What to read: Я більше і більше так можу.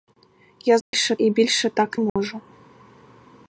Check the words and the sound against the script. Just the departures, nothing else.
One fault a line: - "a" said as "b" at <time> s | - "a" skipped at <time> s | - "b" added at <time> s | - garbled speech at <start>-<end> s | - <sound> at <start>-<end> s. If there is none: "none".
- dropout at 0.8-0.9 s
- dropout at 2.1-2.2 s